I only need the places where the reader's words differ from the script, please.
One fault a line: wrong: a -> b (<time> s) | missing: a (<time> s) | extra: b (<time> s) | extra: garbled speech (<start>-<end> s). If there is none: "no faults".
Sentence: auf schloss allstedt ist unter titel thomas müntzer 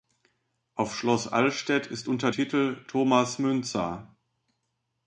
no faults